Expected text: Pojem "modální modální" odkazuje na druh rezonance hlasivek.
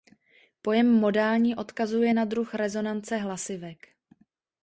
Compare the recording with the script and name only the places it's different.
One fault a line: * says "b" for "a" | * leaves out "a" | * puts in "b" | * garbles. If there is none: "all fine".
* leaves out "modální"